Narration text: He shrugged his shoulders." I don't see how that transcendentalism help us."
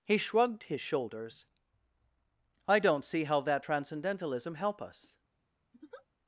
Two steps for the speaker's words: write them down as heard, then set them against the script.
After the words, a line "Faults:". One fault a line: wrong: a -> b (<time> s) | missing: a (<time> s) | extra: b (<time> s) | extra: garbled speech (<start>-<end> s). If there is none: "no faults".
He shrugged his shoulders." I don't see how that transcendentalism help us."
Faults:
no faults